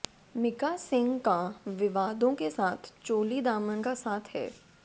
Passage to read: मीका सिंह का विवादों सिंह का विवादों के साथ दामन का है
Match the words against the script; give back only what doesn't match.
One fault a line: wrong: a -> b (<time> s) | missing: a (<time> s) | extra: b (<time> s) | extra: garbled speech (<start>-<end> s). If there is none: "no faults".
missing: सिंह का विवादों (2.3 s)
extra: चोली (3.0 s)
extra: साथ (3.9 s)